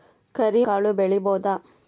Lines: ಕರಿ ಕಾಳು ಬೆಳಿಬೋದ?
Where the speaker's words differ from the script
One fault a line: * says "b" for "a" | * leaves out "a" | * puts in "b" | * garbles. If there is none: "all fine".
all fine